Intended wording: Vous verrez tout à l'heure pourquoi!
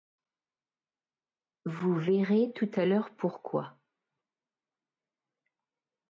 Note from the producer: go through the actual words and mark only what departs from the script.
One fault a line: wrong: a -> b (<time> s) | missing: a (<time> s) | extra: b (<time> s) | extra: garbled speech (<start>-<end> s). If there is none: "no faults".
no faults